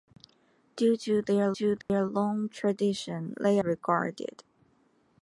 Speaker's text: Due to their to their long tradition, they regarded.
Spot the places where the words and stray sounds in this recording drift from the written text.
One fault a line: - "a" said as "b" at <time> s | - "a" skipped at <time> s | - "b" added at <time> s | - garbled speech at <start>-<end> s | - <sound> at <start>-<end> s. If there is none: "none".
- dropout at 1.8-1.9 s